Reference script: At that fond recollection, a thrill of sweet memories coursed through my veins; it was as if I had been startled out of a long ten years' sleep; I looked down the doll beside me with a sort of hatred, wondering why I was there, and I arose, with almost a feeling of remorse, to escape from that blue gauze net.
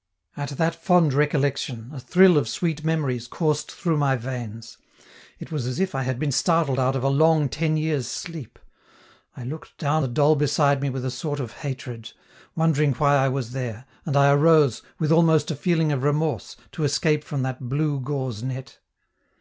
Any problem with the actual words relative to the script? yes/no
no